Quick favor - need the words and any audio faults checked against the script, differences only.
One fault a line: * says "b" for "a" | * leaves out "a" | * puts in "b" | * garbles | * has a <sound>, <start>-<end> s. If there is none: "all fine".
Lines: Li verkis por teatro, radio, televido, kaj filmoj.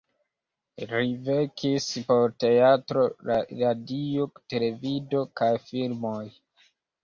all fine